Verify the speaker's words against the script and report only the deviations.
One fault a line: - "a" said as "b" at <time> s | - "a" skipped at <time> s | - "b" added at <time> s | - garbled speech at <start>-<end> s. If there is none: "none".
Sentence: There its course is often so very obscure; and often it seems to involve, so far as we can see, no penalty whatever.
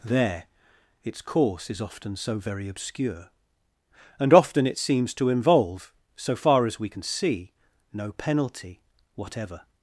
none